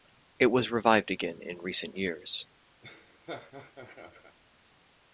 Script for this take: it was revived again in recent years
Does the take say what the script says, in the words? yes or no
yes